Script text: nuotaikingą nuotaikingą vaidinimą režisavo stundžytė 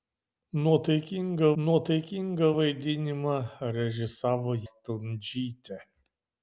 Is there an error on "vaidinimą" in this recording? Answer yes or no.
no